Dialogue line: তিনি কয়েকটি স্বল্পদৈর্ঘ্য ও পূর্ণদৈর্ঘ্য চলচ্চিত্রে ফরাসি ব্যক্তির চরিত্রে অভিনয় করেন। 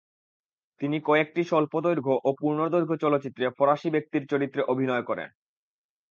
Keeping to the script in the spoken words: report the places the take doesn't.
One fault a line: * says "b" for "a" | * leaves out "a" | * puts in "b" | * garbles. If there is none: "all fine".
all fine